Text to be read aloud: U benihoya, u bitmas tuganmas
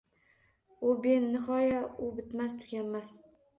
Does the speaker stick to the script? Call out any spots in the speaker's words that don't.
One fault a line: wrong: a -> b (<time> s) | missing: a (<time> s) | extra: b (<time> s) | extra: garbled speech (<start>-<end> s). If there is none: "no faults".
no faults